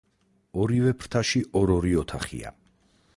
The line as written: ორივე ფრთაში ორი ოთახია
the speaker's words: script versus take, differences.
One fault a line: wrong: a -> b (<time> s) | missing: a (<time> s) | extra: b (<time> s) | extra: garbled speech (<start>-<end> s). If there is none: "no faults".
extra: ორ (1.6 s)